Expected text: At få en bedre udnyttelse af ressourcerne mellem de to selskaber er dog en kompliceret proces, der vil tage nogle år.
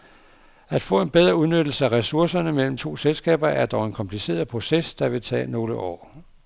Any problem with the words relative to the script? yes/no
yes